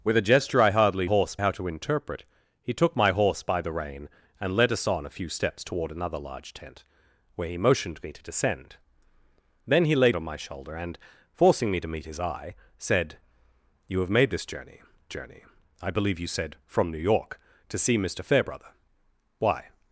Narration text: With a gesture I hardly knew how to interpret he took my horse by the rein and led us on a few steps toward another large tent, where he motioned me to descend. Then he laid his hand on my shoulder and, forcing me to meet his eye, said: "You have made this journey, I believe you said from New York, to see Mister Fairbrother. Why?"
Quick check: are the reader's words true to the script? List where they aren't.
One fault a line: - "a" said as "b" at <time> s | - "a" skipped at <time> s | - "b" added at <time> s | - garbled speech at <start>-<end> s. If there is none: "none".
- "knew" said as "horse" at 1.0 s
- "his hand" skipped at 10.1 s
- "journey" added at 15.1 s